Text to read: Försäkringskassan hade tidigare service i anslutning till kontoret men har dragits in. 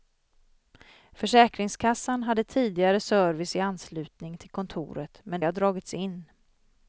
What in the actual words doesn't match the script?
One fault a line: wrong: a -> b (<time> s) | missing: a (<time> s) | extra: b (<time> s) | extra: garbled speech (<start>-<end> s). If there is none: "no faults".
no faults